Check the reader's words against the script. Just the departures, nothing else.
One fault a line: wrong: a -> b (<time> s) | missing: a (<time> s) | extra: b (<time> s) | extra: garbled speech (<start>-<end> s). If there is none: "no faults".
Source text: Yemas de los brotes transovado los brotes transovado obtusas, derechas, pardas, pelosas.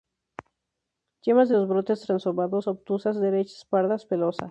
missing: los brotes transovado (2.6 s)